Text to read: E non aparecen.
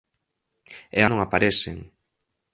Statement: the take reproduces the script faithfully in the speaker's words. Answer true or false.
true